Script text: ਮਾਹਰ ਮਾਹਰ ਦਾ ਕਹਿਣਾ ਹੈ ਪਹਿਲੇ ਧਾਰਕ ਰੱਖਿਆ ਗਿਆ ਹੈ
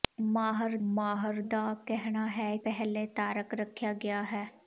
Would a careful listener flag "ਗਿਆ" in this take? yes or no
no